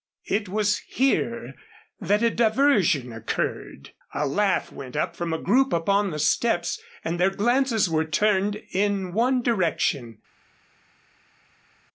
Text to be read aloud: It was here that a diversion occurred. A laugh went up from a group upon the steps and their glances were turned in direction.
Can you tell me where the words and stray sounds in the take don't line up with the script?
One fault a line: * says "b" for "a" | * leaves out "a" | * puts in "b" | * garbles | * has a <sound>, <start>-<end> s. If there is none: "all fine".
* puts in "one"